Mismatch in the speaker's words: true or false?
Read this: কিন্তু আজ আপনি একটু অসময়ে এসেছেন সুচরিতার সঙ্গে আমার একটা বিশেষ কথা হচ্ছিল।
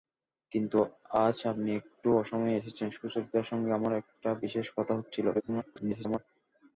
true